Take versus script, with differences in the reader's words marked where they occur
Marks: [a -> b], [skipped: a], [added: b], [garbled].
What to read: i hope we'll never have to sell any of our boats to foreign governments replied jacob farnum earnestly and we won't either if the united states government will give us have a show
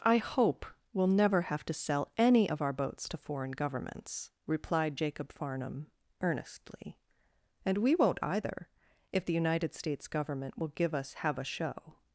i hope we'll never have to sell any of our boats to foreign governments replied jacob farnum earnestly and we won't either if the united states government will give us have a show